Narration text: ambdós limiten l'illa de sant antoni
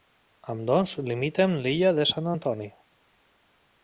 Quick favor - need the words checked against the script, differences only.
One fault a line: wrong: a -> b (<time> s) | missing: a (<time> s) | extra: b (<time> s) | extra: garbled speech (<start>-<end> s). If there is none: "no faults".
no faults